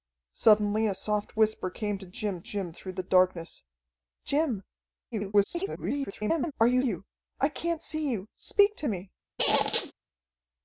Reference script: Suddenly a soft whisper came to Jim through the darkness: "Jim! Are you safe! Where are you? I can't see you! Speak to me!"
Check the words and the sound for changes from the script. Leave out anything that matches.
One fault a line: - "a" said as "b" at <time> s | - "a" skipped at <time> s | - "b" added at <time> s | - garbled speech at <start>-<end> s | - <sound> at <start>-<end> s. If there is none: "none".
- "Jim" added at 2.4 s
- garbled speech at 5.1-6.5 s
- "safe Where are" skipped at 6.8 s
- squeak at 9.4-9.9 s